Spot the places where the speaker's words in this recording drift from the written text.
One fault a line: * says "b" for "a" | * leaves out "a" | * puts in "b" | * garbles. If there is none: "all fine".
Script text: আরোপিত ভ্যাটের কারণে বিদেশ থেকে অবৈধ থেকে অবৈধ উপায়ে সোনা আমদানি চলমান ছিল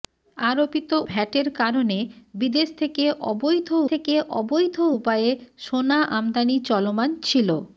all fine